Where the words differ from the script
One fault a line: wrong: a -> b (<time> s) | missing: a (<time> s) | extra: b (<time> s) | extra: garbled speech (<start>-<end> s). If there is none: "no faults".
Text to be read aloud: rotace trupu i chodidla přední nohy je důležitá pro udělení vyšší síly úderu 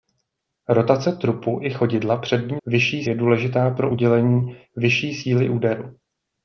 wrong: nohy -> vyšší (2.7 s)